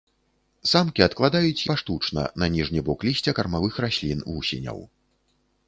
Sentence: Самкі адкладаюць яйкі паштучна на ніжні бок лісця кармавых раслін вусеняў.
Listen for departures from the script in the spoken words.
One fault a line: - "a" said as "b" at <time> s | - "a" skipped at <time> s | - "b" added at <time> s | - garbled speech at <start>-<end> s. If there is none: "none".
- "яйкі" skipped at 1.6 s